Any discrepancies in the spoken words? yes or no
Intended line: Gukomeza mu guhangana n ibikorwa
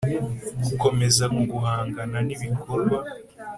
no